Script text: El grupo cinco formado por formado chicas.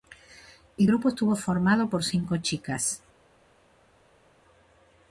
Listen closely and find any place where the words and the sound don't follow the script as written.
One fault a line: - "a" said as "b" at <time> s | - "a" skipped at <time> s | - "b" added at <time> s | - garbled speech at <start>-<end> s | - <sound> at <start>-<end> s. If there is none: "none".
- "cinco" said as "estuvo" at 1.1 s
- "formado" said as "cinco" at 2.0 s